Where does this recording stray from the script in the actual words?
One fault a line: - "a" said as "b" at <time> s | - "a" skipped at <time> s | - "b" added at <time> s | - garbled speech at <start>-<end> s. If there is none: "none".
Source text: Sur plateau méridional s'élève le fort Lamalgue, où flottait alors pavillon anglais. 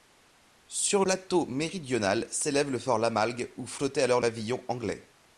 none